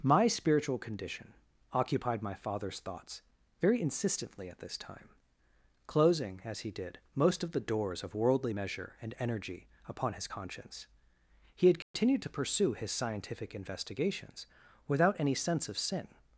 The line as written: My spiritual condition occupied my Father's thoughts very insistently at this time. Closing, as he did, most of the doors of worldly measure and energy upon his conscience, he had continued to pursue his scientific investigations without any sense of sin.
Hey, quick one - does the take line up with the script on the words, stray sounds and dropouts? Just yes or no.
no